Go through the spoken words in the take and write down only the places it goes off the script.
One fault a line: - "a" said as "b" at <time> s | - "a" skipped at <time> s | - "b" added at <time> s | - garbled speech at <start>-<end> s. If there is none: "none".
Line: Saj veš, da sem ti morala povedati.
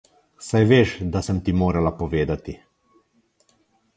none